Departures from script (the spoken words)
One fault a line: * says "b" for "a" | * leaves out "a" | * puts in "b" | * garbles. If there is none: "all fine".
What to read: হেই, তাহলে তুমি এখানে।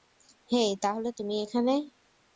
all fine